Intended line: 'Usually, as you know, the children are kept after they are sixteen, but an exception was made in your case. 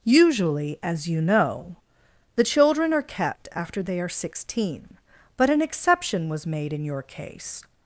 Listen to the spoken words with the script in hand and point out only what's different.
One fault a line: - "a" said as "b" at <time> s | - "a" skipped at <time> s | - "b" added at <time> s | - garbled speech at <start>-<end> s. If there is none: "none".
none